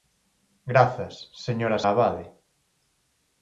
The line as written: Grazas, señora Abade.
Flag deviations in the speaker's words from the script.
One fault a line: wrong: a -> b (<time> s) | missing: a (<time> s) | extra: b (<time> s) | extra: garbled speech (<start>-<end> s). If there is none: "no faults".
no faults